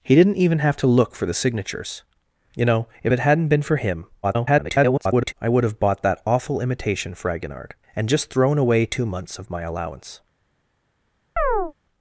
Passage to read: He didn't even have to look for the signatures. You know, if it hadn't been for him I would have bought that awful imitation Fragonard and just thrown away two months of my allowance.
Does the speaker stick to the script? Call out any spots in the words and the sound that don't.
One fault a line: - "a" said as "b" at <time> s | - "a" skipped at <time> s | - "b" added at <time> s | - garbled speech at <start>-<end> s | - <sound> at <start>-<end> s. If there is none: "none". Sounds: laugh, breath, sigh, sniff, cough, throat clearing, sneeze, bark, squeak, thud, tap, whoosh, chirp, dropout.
- garbled speech at 4.2-5.3 s
- chirp at 11.4-11.7 s